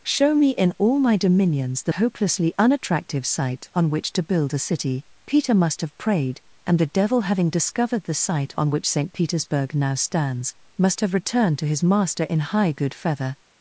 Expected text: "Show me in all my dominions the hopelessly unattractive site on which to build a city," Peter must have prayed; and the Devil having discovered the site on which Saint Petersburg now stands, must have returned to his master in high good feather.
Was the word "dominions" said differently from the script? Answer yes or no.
no